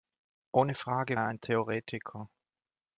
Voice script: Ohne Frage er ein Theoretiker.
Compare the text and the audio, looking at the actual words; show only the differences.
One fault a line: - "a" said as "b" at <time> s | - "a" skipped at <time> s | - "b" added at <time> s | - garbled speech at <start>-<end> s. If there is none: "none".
none